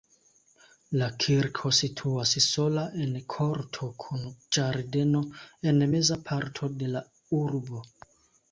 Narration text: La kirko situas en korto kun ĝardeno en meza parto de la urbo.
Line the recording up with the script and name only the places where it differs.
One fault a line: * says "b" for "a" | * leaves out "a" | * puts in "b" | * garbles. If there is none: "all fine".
* puts in "sola"